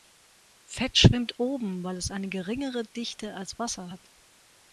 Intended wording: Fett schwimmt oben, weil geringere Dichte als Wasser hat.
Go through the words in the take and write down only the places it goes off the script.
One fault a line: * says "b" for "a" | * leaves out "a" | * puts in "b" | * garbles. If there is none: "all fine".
* puts in "es eine"